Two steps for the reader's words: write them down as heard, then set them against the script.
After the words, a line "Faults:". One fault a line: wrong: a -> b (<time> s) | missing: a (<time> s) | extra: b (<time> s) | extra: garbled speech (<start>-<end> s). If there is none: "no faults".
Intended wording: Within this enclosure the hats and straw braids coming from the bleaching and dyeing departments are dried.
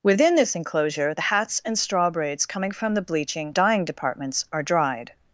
Within this enclosure the hats and straw braids coming from the bleaching dyeing departments are dried.
Faults:
missing: and (3.6 s)